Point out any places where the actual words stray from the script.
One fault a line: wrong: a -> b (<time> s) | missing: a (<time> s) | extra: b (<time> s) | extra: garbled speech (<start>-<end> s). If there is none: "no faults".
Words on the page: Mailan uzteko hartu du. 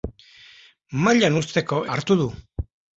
no faults